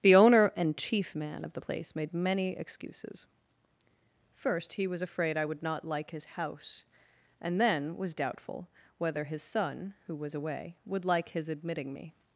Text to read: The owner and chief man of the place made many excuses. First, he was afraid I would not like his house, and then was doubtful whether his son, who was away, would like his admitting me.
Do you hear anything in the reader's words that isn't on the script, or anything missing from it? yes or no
no